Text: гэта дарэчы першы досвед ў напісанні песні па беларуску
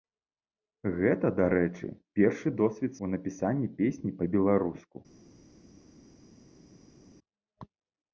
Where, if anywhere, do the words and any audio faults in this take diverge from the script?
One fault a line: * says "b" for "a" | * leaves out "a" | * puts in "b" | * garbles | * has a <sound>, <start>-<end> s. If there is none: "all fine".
all fine